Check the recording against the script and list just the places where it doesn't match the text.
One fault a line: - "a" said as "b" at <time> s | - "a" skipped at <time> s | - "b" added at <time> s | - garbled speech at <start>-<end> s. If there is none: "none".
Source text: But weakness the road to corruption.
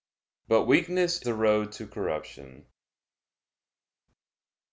none